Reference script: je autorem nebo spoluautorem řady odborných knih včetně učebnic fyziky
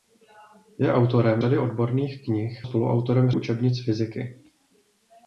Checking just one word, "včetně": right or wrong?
wrong